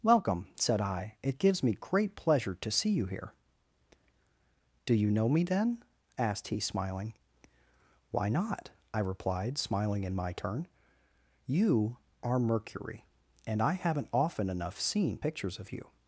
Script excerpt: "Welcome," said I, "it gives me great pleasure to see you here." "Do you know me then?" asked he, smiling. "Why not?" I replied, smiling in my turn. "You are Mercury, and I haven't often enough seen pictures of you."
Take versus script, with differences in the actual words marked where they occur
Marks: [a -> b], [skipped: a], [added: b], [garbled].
"Welcome," said I, "it gives me great pleasure to see you here." "Do you know me then?" asked he, smiling. "Why not?" I replied, smiling in my turn. "You are Mercury, and I haven't often enough seen pictures of you."